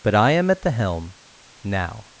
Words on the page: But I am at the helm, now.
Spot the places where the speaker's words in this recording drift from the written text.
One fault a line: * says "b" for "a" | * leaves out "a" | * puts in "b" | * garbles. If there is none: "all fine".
all fine